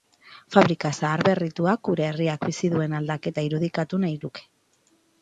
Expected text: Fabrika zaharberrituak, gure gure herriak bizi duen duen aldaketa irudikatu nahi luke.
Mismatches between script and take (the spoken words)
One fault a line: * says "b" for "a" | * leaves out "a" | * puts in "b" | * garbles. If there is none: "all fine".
* leaves out "gure"
* leaves out "duen"